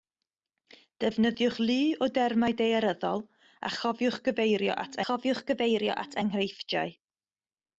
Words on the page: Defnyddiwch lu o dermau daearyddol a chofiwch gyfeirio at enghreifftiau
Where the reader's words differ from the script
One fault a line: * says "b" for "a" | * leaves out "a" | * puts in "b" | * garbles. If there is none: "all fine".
* puts in "chofiwch gyfeirio at"